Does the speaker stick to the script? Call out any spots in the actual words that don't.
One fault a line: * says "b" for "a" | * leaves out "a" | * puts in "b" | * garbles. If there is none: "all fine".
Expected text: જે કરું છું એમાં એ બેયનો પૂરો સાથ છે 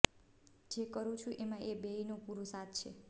all fine